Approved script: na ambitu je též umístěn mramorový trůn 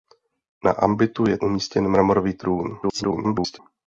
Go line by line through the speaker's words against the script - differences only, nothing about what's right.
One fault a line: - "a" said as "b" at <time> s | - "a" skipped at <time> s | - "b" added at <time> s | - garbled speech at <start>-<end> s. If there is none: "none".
- "též" skipped at 1.4 s
- garbled speech at 2.8-3.6 s